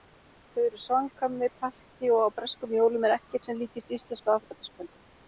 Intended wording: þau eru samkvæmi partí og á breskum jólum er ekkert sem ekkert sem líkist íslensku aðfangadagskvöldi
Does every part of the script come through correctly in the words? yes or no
no